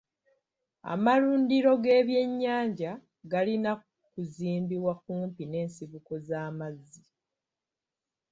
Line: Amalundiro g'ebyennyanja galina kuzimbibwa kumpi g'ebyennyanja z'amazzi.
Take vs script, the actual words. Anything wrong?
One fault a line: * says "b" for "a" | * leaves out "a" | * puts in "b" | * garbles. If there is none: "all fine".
* says "n'ensibuko" for "g'ebyennyanja"